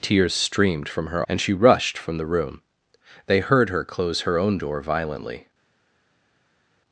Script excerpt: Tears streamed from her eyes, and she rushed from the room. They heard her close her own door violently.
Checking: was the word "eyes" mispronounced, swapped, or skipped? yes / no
yes